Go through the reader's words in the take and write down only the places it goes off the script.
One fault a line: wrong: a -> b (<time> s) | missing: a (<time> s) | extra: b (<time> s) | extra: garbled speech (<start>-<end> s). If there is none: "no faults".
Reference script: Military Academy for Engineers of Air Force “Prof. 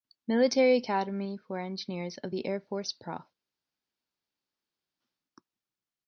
extra: the (2.3 s)